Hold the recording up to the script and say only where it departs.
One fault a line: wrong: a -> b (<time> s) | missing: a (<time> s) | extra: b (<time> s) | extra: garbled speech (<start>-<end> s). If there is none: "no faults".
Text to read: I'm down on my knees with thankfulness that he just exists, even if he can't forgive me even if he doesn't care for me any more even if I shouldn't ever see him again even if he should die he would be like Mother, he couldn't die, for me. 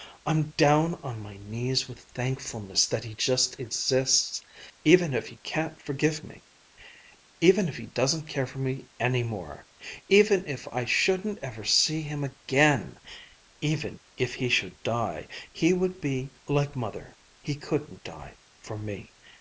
no faults